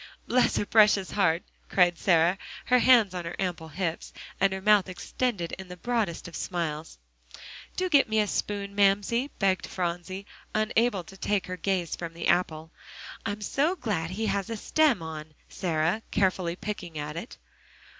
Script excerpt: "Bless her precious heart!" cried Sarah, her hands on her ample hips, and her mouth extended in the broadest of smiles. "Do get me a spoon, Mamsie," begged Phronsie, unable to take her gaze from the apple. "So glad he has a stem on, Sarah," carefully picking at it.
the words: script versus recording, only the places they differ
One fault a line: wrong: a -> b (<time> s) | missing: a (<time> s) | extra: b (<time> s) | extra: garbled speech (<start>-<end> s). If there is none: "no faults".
extra: I'm (13.3 s)